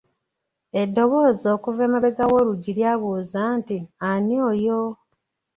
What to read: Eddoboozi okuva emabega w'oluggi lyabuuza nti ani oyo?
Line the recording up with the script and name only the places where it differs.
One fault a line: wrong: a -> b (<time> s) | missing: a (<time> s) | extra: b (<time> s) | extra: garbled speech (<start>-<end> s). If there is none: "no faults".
no faults